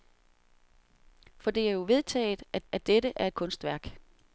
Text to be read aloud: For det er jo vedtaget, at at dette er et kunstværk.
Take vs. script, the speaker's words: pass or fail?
pass